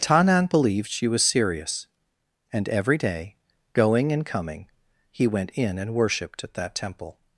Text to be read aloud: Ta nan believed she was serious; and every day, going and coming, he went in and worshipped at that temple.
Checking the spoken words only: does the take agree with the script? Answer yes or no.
yes